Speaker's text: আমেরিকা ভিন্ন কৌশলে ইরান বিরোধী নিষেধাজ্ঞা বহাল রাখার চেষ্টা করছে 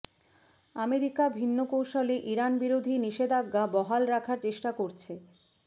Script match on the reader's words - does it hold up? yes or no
yes